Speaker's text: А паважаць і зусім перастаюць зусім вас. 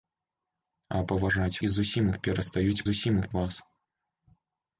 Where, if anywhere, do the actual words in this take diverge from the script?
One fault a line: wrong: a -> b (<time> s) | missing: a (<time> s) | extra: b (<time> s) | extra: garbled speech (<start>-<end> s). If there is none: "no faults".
no faults